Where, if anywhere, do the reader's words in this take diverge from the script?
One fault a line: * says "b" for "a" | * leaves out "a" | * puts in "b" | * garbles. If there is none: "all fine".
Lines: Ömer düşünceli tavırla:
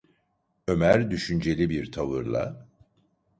* puts in "bir"